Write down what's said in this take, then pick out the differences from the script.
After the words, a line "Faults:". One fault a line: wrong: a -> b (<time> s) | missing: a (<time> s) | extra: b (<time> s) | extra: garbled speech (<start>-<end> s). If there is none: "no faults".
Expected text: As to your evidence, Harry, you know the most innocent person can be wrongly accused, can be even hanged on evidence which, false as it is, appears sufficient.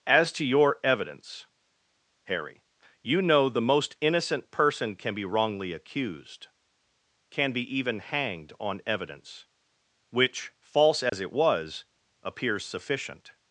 As to your evidence, Harry, you know the most innocent person can be wrongly accused, can be even hanged on evidence which, false as it was, appears sufficient.
Faults:
wrong: is -> was (11.3 s)